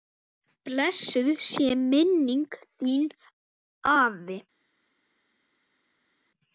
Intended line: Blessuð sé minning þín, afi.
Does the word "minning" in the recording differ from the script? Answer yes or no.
no